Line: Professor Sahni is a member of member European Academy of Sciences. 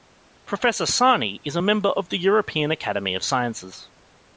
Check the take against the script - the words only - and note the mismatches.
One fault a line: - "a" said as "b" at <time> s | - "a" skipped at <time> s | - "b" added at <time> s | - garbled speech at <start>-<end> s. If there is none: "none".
- "member" said as "the" at 2.1 s